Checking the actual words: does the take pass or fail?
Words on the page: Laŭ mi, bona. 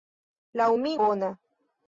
pass